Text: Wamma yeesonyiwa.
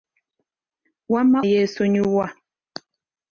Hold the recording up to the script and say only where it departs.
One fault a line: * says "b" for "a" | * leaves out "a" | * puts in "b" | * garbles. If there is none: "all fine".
all fine